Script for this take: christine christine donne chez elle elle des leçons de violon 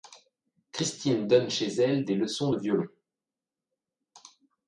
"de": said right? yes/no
yes